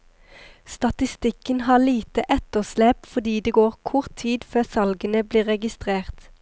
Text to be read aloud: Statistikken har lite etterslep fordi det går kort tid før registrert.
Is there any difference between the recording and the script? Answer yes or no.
yes